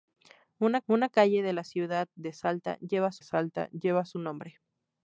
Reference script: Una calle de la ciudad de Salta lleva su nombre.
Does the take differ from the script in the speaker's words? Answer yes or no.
yes